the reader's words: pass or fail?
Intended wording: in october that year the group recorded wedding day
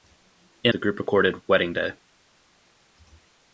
fail